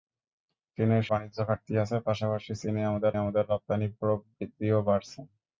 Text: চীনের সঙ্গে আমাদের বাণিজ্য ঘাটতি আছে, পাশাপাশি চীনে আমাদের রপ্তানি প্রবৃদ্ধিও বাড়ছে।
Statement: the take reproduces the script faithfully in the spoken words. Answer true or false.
false